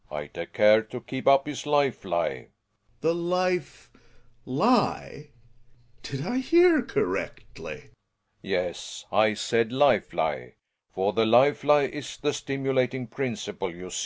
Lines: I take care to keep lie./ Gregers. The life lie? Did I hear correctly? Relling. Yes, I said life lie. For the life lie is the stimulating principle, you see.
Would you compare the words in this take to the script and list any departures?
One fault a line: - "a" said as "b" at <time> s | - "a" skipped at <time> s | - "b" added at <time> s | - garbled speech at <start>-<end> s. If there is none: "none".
- "up his life" added at 1.3 s